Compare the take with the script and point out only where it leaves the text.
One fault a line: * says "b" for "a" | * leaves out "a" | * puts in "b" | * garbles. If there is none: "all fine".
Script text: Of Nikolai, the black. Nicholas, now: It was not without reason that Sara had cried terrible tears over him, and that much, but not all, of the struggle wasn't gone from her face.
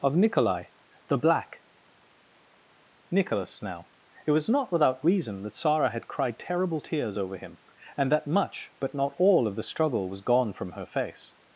* says "was" for "wasn't"